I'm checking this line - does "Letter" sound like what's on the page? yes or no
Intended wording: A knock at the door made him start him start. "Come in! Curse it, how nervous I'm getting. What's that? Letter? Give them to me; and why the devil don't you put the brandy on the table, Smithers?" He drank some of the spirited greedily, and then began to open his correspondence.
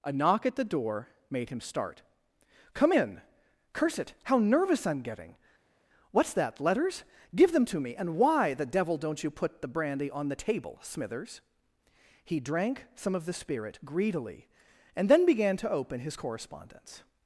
no